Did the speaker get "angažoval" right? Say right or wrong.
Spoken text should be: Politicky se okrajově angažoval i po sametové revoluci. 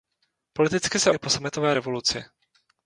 wrong